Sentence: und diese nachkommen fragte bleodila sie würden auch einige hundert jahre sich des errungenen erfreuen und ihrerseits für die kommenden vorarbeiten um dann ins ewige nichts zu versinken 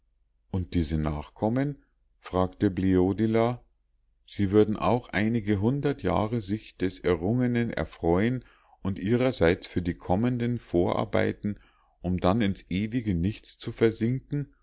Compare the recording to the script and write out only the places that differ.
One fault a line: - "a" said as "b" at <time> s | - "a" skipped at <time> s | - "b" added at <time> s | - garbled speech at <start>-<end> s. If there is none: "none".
none